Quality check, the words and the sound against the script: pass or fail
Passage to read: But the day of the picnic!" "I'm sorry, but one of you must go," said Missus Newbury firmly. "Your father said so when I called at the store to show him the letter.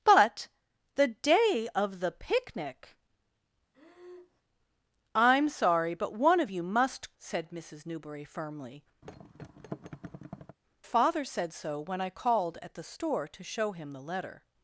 fail